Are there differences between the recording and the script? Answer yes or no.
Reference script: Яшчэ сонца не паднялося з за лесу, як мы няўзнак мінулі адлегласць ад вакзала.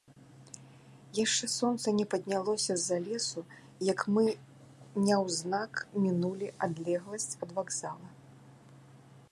no